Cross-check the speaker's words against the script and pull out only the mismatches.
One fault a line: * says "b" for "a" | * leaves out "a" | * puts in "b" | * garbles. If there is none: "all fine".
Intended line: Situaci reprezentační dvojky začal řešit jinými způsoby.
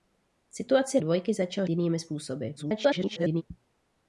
* leaves out "reprezentační"
* leaves out "řešit"
* garbles